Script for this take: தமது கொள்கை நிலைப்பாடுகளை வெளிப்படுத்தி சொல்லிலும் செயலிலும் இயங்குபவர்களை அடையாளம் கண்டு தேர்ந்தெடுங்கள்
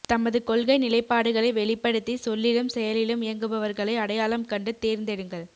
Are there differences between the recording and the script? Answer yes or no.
no